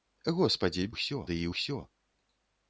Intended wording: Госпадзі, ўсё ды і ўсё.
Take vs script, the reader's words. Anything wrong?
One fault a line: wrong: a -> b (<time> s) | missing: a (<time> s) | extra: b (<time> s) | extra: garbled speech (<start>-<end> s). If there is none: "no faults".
no faults